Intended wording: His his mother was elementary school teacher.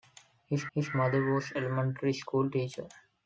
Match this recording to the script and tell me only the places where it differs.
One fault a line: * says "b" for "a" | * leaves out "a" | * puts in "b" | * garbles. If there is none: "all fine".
all fine